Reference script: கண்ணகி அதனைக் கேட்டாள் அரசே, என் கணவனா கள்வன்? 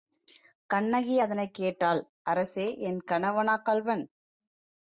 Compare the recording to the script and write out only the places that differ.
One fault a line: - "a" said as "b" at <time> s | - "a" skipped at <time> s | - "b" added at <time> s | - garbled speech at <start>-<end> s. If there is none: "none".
none